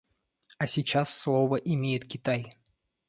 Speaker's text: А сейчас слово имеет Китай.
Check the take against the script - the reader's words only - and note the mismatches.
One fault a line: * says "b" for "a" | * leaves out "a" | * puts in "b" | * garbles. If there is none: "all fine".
all fine